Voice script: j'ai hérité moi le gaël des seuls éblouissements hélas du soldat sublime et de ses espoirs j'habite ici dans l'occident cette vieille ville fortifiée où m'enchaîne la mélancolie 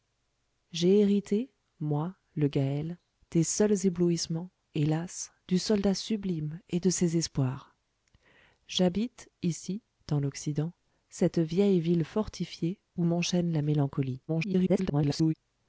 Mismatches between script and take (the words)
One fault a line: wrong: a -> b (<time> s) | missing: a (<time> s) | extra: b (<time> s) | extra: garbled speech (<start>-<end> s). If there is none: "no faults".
extra: garbled speech (14.3-15.3 s)